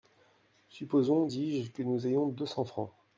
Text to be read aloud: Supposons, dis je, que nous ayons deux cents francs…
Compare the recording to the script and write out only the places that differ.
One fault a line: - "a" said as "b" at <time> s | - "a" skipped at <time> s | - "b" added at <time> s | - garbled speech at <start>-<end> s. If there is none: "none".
none